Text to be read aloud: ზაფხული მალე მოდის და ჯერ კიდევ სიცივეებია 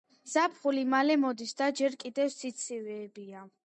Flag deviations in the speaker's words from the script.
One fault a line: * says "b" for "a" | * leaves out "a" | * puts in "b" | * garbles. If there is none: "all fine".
all fine